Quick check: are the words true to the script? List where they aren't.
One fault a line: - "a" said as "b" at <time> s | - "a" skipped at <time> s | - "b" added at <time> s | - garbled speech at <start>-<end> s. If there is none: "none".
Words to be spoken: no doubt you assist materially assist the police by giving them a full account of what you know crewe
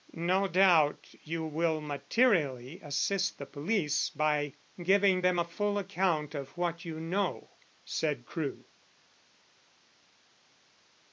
- "assist" said as "will" at 1.4 s
- "said" added at 7.8 s